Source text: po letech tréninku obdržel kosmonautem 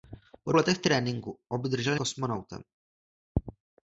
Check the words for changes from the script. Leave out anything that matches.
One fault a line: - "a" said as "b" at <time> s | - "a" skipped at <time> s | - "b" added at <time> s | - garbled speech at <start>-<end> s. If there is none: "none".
none